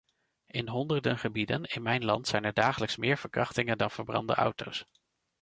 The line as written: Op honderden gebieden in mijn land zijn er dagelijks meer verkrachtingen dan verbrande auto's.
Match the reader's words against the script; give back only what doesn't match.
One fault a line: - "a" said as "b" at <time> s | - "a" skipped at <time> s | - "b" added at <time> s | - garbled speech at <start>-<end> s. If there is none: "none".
- "Op" said as "In" at 0.5 s